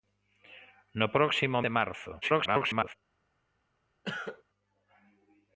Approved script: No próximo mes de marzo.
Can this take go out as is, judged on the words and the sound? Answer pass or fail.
fail